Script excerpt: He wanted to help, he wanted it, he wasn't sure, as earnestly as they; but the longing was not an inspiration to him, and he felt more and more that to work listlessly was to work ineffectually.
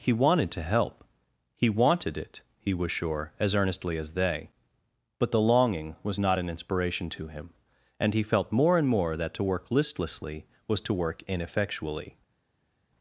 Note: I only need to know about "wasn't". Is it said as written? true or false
false